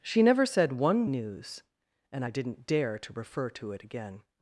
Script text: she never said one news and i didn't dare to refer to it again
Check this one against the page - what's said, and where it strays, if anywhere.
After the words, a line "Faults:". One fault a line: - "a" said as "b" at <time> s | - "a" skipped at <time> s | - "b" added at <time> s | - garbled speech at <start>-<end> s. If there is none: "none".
she never said one news and i didn't dare to refer to it again
Faults:
none